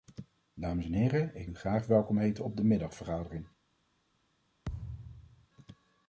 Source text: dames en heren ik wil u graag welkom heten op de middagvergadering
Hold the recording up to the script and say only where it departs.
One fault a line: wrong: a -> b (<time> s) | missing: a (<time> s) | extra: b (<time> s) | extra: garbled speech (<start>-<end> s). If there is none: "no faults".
missing: wil (1.5 s)